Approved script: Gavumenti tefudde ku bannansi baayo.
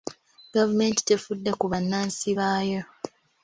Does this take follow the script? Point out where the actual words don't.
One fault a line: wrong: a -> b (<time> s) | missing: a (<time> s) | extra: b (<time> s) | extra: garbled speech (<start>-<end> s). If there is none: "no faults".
no faults